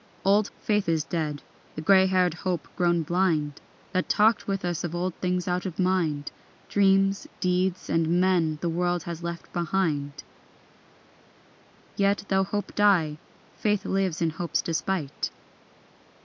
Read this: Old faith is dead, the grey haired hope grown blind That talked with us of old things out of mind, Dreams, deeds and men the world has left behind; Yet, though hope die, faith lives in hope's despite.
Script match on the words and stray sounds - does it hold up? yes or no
yes